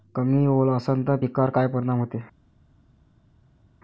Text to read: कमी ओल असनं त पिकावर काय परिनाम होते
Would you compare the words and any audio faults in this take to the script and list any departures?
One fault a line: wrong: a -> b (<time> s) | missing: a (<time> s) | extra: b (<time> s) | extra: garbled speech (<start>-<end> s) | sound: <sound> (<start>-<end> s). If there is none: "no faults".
no faults